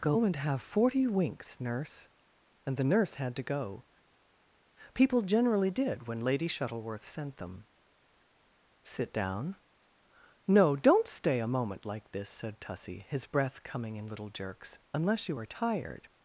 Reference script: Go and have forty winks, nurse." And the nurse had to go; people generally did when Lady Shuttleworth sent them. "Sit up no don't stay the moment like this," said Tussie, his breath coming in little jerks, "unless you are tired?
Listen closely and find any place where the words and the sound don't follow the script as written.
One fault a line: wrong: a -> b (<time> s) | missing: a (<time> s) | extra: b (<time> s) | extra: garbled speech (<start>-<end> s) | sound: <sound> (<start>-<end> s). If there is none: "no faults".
wrong: up -> down (9.1 s)
wrong: the -> a (11.4 s)